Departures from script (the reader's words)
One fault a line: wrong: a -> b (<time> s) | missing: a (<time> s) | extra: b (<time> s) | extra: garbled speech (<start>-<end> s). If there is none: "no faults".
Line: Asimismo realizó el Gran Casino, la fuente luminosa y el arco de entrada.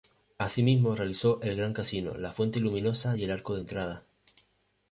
no faults